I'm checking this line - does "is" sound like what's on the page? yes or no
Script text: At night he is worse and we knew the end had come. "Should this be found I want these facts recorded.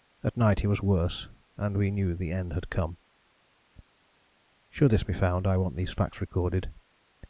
no